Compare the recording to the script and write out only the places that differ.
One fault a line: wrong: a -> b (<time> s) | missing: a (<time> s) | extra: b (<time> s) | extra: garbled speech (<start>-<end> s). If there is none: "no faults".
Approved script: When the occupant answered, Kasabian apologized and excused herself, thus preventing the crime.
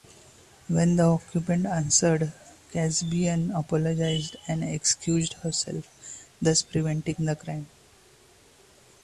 no faults